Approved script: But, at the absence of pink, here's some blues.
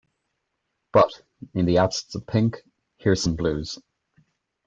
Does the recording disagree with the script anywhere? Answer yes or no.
yes